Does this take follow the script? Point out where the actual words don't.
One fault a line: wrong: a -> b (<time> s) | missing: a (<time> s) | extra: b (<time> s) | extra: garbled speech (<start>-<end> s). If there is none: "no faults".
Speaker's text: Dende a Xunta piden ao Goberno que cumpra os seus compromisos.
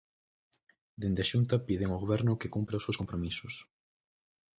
no faults